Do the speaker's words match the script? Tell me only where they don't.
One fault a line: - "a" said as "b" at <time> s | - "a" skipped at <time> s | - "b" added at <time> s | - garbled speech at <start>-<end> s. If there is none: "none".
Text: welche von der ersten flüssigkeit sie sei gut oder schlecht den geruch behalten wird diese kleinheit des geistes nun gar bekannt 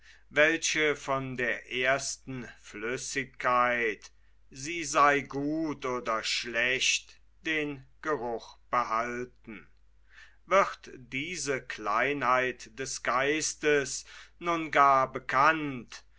none